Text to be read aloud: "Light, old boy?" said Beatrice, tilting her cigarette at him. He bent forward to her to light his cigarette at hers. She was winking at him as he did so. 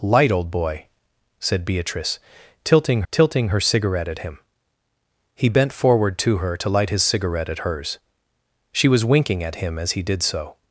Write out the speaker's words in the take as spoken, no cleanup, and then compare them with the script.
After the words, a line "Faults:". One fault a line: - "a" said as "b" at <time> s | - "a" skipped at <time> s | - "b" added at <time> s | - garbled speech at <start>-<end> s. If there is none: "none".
"Light, old boy?" said Beatrice, tilting tilting her cigarette at him. He bent forward to her to light his cigarette at hers. She was winking at him as he did so.
Faults:
- "tilting" added at 3.1 s